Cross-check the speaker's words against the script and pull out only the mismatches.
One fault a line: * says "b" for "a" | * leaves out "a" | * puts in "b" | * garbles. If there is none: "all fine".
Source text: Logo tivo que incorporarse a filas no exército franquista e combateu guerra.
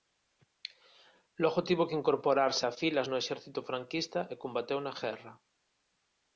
* puts in "na"